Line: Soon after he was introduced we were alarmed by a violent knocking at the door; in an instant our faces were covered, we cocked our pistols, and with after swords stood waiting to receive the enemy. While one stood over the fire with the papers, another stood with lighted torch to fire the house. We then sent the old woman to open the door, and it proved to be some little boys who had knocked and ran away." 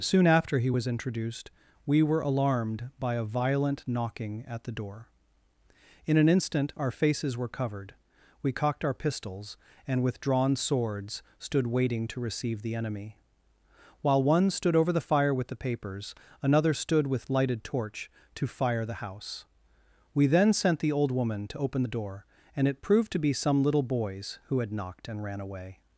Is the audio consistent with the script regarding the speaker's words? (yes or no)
no